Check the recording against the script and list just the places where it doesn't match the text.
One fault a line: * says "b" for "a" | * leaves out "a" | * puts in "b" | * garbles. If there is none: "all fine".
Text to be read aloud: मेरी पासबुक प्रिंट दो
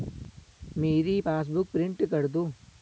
* puts in "कर"